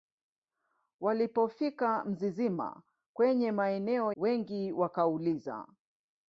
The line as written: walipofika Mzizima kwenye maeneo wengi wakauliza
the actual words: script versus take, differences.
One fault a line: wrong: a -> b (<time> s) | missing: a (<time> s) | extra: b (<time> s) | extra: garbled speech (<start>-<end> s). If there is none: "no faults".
no faults